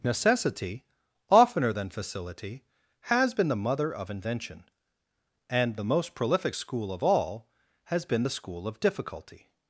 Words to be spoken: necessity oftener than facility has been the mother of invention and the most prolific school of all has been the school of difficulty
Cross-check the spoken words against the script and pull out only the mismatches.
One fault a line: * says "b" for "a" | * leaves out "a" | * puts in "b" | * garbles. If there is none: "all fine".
all fine